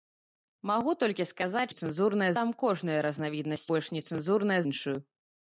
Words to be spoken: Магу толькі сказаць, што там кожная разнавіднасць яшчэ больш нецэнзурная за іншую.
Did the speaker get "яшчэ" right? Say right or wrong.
wrong